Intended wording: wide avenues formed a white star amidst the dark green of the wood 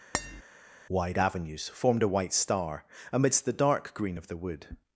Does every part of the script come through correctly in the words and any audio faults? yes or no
no